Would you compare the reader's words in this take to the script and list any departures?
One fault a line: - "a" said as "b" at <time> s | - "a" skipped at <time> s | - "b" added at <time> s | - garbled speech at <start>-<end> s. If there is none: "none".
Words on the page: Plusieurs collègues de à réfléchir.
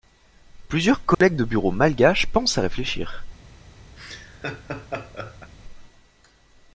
- "bureau malgaches pensent" added at 1.4 s